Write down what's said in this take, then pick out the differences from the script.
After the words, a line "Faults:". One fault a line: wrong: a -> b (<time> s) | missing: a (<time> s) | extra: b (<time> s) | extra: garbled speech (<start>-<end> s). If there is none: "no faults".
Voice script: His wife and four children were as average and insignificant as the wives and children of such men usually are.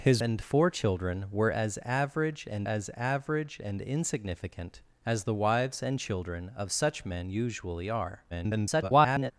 His and four children were as average and as average and insignificant as the wives and children of such men usually are. [garbled]
Faults:
missing: wife (0.2 s)
extra: as average and (2.6 s)
extra: garbled speech (8.3-9.3 s)